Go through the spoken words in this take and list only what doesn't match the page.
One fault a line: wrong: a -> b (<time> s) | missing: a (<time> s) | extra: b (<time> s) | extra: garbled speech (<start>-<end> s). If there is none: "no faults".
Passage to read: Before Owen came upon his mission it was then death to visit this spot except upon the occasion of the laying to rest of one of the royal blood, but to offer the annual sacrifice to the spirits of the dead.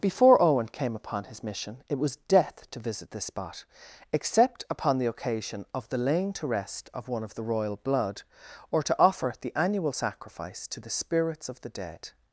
missing: then (2.1 s)
wrong: but -> or (8.7 s)